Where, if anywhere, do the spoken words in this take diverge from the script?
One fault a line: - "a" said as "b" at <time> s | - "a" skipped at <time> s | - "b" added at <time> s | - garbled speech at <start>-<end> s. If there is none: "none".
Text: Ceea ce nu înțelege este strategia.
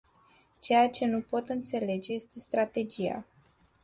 - "pot" added at 1.2 s